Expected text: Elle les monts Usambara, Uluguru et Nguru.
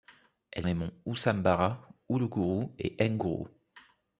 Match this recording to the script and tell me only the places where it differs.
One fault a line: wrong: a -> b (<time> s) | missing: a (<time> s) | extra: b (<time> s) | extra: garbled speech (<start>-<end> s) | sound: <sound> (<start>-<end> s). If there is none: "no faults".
no faults